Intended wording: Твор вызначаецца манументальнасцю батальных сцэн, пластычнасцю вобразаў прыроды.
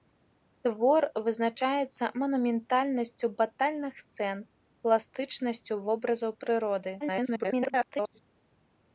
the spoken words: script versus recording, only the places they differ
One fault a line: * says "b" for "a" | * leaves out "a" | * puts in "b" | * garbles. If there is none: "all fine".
* garbles